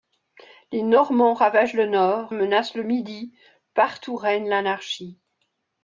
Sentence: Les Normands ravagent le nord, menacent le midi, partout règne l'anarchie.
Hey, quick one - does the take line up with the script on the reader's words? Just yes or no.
yes